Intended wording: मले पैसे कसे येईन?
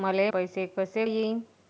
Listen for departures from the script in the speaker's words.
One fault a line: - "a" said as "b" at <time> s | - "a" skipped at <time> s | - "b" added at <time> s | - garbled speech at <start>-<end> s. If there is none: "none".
none